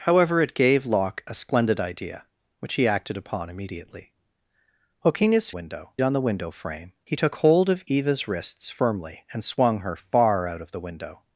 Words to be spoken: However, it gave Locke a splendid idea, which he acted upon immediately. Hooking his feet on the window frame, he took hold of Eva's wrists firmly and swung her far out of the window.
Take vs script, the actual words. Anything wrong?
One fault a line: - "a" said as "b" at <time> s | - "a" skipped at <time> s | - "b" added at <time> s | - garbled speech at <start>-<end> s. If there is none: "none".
- "feet" said as "window" at 5.5 s